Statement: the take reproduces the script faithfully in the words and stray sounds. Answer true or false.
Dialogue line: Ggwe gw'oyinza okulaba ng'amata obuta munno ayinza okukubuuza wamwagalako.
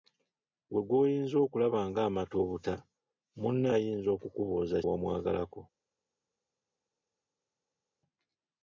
true